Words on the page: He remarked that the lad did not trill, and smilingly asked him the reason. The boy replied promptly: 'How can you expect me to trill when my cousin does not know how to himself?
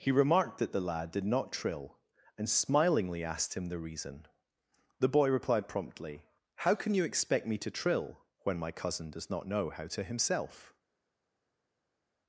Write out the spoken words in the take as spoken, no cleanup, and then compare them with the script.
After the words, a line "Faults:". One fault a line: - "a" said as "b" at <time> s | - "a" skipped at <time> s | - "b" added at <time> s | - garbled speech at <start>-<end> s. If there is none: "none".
He remarked that the lad did not trill, and smilingly asked him the reason. The boy replied promptly: 'How can you expect me to trill when my cousin does not know how to himself?
Faults:
none